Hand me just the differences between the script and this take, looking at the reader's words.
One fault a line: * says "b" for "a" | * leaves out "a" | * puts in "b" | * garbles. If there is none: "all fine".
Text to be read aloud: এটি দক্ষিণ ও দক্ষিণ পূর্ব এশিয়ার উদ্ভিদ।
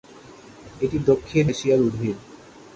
* leaves out "ও দক্ষিণ পূর্ব"